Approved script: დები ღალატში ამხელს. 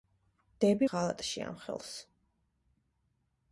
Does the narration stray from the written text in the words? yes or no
no